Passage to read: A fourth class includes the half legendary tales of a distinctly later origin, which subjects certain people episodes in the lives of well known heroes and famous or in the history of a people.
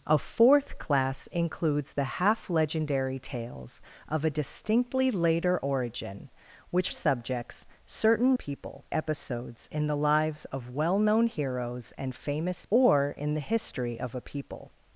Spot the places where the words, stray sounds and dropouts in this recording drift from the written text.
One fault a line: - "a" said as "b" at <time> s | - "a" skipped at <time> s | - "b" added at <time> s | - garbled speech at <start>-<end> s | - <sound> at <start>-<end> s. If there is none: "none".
none